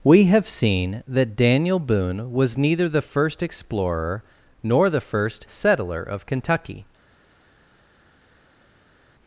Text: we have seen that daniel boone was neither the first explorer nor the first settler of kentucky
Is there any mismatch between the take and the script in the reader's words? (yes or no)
no